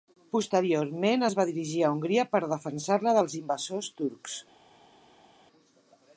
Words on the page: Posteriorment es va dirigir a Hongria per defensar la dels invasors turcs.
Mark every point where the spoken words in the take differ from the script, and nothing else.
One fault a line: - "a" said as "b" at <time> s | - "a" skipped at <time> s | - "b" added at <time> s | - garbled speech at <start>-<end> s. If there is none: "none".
none